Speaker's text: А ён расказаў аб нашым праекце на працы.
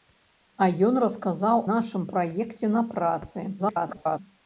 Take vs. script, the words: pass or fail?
fail